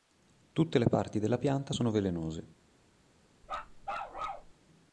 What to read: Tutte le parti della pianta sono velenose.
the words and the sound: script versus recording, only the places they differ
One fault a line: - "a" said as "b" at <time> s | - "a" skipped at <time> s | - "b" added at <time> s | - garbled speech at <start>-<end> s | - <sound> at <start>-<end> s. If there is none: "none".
- bark at 3.4-4.5 s